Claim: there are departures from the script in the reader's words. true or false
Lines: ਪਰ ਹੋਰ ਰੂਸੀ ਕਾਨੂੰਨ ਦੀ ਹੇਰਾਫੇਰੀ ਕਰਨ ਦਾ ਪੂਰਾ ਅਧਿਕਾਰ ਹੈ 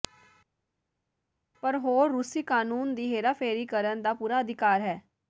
false